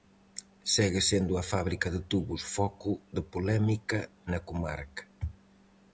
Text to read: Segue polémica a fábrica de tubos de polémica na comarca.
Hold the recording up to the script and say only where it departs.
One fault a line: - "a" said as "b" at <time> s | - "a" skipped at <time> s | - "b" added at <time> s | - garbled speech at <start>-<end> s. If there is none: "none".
- "polémica" said as "sendo" at 1.1 s
- "foco" added at 2.5 s